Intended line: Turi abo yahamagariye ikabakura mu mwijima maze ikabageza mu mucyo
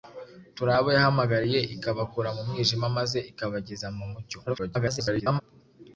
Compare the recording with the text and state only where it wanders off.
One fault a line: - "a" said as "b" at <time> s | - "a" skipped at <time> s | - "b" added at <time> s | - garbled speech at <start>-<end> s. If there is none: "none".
- garbled speech at 4.5-5.4 s